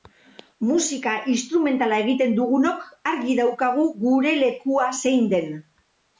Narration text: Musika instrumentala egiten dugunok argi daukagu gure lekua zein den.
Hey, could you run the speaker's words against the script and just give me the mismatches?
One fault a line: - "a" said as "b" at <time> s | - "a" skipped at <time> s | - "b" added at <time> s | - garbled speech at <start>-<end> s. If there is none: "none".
none